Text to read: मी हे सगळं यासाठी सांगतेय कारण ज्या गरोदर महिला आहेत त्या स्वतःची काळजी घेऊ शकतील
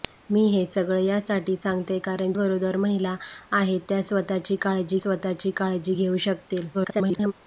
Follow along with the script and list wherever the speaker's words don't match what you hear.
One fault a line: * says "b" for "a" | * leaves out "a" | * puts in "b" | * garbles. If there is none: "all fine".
* leaves out "ज्या"
* puts in "स्वतःची काळजी"
* garbles